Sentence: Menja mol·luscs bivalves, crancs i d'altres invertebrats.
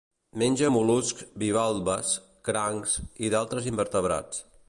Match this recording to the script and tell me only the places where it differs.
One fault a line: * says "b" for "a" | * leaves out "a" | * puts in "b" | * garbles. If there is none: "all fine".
all fine